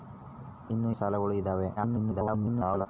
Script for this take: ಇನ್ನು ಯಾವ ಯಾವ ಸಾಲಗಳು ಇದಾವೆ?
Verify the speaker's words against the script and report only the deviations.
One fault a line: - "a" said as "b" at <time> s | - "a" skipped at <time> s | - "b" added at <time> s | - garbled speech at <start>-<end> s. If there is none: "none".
- "ಯಾವ ಯಾವ" skipped at 0.9 s
- garbled speech at 1.8-2.9 s